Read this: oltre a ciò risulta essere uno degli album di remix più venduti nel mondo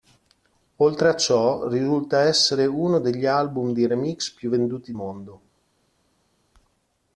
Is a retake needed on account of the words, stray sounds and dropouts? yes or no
yes